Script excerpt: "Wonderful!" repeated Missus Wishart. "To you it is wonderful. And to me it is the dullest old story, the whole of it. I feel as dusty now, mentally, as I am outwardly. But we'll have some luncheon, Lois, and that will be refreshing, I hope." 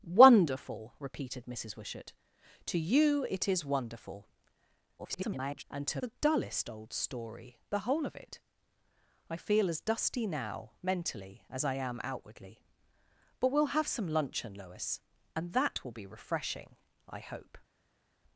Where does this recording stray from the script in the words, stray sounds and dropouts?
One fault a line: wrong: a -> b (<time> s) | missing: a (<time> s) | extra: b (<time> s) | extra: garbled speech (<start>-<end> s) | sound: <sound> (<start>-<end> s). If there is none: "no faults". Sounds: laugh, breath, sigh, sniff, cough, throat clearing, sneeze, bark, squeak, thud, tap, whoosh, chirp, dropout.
extra: garbled speech (5.0-5.6 s)
missing: me it is (6.0 s)